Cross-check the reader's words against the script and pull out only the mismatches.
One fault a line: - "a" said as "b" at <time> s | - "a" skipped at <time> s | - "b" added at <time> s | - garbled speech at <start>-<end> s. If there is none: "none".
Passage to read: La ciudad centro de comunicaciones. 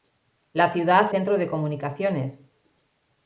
none